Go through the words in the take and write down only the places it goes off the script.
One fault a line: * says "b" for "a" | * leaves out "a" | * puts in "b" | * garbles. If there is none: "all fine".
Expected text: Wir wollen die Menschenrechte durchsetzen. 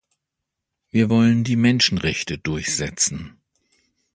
all fine